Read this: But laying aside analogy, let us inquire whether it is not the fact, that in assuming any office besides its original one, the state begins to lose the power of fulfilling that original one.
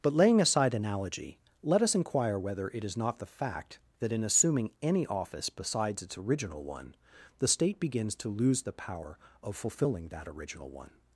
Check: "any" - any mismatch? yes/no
no